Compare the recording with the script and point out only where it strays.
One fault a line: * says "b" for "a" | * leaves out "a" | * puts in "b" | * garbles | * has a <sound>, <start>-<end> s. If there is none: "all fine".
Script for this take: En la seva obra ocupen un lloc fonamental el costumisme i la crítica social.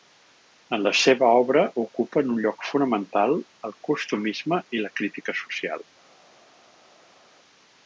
all fine